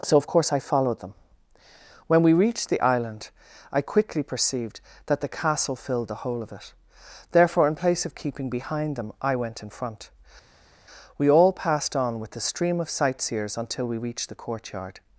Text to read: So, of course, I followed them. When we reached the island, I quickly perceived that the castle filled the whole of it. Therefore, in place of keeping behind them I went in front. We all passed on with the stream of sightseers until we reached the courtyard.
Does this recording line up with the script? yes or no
yes